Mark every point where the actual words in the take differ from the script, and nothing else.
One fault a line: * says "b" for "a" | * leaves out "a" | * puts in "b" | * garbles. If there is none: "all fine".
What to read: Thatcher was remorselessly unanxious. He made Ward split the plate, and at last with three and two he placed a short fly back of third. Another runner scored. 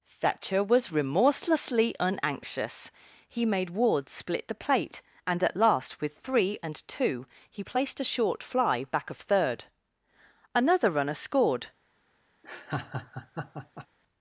all fine